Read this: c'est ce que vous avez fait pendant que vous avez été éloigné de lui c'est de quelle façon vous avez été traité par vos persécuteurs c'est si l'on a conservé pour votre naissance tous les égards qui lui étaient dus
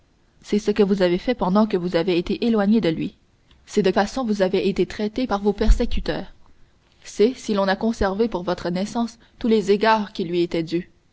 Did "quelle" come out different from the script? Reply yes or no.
yes